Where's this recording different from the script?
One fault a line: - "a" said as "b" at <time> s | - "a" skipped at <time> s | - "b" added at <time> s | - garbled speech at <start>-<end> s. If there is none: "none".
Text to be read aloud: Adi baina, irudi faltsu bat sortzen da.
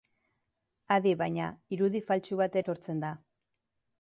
none